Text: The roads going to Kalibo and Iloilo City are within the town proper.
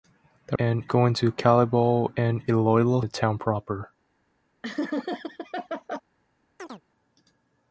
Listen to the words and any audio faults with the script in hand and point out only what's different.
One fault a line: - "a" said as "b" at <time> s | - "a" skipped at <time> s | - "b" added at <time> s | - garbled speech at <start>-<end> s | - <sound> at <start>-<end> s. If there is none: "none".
- "roads" said as "and" at 0.6 s
- "City are within" skipped at 3.0 s
- laugh at 4.6-6.0 s
- chirp at 6.6-6.8 s